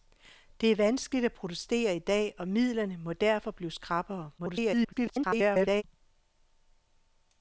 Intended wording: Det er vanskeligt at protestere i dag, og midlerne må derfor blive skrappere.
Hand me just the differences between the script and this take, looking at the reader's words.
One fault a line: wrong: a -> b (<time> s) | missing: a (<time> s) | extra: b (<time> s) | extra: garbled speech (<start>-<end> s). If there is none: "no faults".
extra: garbled speech (4.4-5.8 s)